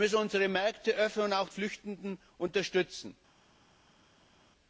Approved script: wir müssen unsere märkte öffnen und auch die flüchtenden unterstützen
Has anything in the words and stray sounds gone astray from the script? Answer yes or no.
yes